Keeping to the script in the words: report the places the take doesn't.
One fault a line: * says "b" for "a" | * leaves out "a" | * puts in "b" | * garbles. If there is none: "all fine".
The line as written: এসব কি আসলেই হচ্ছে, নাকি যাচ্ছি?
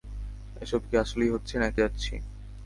all fine